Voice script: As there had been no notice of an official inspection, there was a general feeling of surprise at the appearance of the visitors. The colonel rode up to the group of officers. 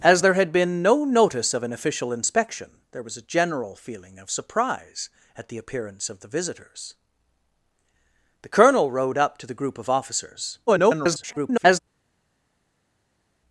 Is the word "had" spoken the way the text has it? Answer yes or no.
yes